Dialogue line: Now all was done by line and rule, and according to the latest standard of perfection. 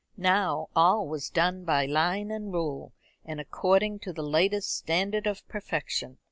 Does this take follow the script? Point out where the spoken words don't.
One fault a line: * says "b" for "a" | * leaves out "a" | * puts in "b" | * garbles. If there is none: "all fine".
all fine